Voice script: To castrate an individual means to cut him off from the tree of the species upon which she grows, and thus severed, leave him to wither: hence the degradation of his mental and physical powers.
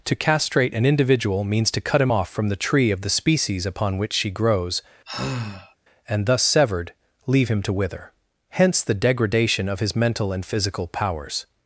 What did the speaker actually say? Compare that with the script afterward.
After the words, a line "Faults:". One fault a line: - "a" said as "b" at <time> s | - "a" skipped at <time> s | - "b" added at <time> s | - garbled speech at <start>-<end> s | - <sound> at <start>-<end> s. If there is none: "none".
To castrate an individual means to cut him off from the tree of the species upon which she grows, and thus severed, leave him to wither: hence the degradation of his mental and physical powers.
Faults:
- sigh at 5.1-5.8 s